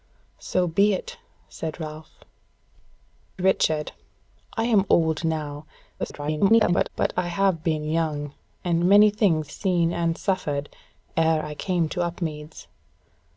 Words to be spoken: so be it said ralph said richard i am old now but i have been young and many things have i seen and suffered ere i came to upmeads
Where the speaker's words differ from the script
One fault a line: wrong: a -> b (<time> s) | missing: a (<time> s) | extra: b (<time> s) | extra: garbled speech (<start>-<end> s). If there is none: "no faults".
missing: said (2.2 s)
extra: garbled speech (6.0-6.9 s)
missing: have i (9.5 s)